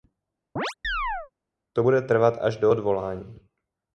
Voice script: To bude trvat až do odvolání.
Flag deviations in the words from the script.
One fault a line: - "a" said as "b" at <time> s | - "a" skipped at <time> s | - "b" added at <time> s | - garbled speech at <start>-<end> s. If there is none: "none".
none